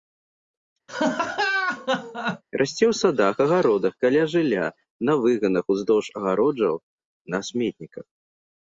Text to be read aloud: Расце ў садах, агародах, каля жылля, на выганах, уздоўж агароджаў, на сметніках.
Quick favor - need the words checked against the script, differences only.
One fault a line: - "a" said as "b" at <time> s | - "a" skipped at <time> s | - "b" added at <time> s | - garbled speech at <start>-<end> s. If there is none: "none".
none